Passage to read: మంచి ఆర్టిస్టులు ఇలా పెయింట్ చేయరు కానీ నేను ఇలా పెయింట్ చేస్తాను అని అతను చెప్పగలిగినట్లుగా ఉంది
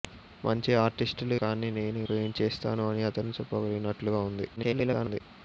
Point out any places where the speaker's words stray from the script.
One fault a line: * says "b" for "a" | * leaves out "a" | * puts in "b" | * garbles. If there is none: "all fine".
* leaves out "ఇలా పెయింట్ చేయరు"
* leaves out "ఇలా"
* garbles